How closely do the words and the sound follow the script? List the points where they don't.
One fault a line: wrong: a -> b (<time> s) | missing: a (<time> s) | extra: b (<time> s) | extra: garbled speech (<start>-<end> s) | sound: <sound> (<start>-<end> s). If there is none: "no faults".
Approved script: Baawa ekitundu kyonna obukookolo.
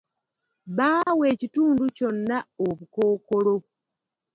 sound: dropout (1.0-1.1 s)